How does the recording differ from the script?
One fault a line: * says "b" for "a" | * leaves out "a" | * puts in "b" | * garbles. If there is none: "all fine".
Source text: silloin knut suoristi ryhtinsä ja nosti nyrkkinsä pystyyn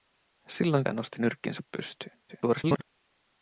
* leaves out "knut suoristi ryhtinsä"
* garbles